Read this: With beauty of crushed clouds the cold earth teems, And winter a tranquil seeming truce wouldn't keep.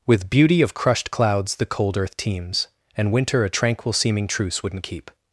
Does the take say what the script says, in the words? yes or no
yes